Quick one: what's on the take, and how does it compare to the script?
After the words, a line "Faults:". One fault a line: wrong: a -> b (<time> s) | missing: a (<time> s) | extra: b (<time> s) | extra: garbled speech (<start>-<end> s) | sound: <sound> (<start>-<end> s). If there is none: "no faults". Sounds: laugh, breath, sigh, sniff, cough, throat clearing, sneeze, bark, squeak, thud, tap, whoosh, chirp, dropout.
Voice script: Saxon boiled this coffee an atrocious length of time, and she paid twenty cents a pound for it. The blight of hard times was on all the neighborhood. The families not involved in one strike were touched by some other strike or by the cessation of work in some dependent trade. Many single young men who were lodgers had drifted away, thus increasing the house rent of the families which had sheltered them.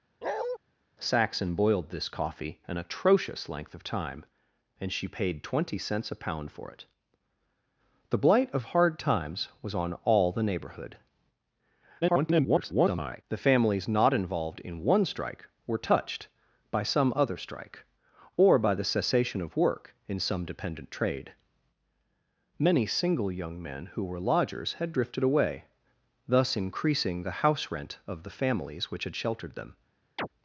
Saxon boiled this coffee an atrocious length of time, and she paid twenty cents a pound for it. The blight of hard times was on all the neighborhood. [garbled] The families not involved in one strike were touched by some other strike or by the cessation of work in some dependent trade. Many single young men who were lodgers had drifted away, thus increasing the house rent of the families which had sheltered them.
Faults:
sound: bark (0.2-0.6 s)
extra: garbled speech (12.0-13.2 s)
sound: chirp (30.2-30.3 s)